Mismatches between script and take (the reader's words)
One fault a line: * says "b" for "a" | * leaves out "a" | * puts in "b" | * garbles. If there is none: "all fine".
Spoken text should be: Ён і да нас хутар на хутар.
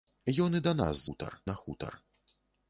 all fine